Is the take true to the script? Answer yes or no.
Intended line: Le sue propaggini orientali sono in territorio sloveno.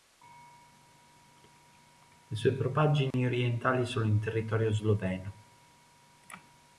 yes